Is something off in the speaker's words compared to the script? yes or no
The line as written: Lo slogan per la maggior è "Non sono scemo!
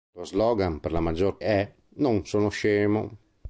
no